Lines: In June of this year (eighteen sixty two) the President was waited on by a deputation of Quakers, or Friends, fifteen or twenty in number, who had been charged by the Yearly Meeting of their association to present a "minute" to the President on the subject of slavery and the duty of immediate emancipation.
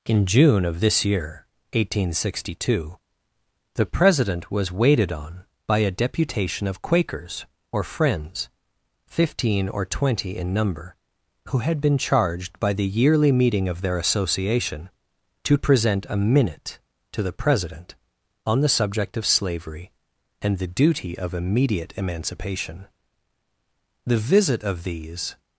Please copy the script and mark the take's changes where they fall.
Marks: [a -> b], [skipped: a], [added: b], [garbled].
In June of this year (eighteen sixty two) the President was waited on by a deputation of Quakers, or Friends, fifteen or twenty in number, who had been charged by the Yearly Meeting of their association to present a "minute" to the President on the subject of slavery and the duty of immediate emancipation. [added: The visit of these]